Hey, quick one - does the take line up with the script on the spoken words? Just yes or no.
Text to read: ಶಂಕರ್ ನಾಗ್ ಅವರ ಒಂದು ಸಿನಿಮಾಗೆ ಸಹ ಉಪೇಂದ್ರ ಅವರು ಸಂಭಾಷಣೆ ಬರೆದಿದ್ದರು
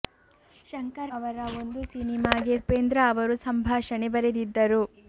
no